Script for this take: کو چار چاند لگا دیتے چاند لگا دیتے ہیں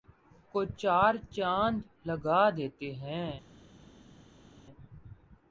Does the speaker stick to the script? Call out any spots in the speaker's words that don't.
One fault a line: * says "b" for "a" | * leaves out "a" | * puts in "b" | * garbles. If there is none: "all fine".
* leaves out "چاند لگا دیتے"